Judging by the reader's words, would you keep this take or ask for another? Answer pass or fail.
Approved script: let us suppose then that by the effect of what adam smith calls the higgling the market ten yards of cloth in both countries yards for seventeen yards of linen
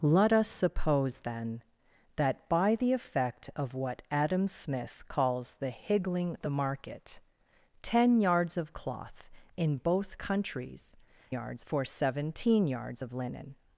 pass